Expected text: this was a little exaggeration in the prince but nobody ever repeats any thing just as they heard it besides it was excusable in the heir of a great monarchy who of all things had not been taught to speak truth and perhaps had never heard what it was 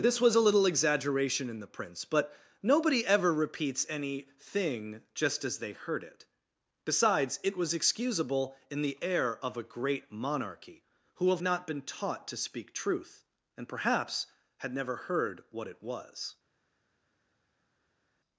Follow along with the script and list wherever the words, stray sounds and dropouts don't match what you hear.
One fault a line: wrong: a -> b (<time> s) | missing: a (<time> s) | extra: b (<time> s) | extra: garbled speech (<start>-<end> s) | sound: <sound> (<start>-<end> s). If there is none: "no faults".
missing: all things had (11.4 s)